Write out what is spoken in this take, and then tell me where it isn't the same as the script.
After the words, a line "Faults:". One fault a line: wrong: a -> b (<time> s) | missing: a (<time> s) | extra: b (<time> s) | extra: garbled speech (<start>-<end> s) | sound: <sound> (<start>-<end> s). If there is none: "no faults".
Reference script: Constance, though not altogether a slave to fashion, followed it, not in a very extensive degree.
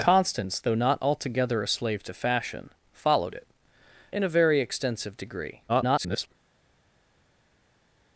Constance, though not altogether a slave to fashion, followed it, in a very extensive degree. [garbled]
Faults:
missing: not (3.5 s)
extra: garbled speech (5.7-6.3 s)